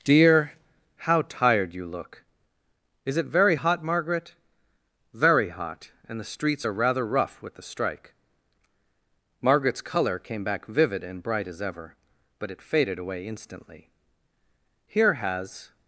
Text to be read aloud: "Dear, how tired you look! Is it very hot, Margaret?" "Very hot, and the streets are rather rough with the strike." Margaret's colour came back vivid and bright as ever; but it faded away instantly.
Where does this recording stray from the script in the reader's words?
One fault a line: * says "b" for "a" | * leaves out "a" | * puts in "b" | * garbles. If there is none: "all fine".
* puts in "Here has"